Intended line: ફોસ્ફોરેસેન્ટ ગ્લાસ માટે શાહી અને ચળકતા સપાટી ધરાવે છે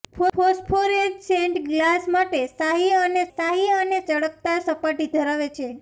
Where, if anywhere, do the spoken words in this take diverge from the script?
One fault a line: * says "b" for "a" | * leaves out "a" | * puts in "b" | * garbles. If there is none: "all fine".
* puts in "શાહી અને"